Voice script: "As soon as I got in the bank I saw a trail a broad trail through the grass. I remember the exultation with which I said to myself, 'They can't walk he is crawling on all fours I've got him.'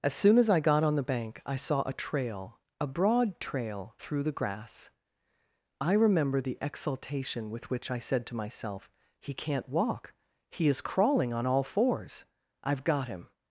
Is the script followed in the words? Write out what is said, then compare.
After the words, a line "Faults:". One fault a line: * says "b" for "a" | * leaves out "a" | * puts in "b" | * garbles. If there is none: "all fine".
"As soon as I got on the bank I saw a trail a broad trail through the grass. I remember the exultation with which I said to myself, 'He can't walk he is crawling on all fours I've got him.'
Faults:
* says "on" for "in"
* says "He" for "They"